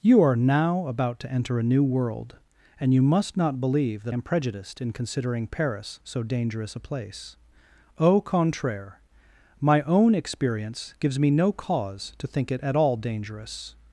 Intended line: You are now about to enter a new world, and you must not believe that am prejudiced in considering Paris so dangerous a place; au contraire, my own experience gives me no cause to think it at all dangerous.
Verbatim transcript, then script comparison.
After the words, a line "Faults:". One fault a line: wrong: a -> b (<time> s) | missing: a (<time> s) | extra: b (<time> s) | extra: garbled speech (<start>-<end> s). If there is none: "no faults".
You are now about to enter a new world, and you must not believe that am prejudiced in considering Paris so dangerous a place; au contraire, my own experience gives me no cause to think it at all dangerous.
Faults:
no faults